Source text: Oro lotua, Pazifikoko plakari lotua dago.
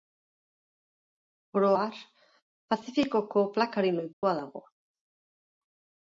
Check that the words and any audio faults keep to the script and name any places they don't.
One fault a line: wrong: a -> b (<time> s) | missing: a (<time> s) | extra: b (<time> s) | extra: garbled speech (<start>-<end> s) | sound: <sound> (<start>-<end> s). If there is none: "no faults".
wrong: lotua -> har (1.8 s)
sound: dropout (4.1-4.2 s)